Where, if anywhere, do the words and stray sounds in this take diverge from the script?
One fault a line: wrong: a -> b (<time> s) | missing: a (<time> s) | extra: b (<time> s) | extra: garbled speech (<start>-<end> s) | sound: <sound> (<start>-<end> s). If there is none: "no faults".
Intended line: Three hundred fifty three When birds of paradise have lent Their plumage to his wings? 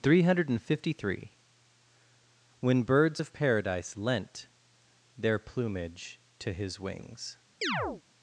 missing: have (4.0 s)
sound: chirp (7.6-8.0 s)